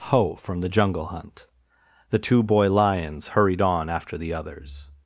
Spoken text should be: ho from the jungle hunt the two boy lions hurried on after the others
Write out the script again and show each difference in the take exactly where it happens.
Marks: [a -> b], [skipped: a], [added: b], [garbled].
ho from the jungle hunt the two boy lions hurried on after the others